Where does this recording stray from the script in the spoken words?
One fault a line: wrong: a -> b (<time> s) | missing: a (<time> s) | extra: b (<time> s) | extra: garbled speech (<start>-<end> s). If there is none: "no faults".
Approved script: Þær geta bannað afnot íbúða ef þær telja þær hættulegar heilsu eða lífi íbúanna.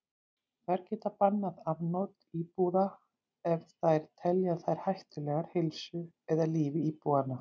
no faults